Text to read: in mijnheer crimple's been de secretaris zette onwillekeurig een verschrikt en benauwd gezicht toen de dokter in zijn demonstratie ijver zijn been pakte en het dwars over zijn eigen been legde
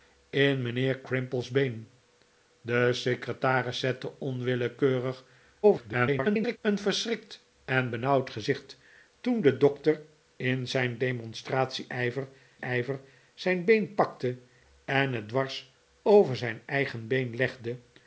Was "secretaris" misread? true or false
false